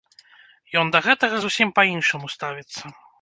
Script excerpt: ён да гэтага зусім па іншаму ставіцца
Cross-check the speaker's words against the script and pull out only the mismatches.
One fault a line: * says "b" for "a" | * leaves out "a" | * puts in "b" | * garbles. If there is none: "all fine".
all fine